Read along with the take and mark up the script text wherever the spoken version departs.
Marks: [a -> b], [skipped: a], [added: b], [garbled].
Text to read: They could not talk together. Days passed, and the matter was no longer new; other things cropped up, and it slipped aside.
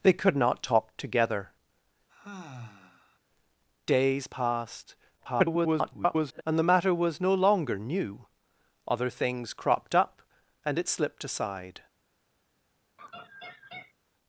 They could not talk together. Days passed, [garbled] and the matter was no longer new; other things cropped up, and it slipped aside.